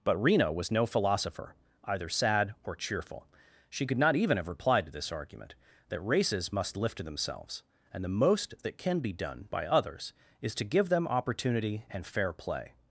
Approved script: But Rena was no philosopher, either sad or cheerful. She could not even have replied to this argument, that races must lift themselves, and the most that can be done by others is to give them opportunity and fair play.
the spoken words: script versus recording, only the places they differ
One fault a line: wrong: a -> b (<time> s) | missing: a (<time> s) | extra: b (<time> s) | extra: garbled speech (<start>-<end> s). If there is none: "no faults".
no faults